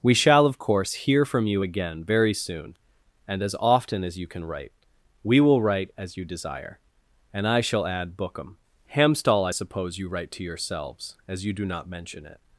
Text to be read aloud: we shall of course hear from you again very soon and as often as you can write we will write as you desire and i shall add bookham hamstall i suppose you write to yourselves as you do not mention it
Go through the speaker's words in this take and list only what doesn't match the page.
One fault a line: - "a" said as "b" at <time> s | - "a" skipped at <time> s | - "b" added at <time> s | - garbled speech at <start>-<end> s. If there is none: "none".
none